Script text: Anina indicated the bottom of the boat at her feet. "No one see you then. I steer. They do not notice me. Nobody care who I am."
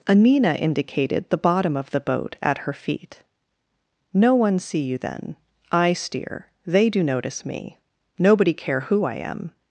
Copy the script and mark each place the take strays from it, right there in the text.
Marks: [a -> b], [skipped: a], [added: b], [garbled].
Anina indicated the bottom of the boat at her feet. "No one see you then. I steer. They do [skipped: not] notice me. Nobody care who I am."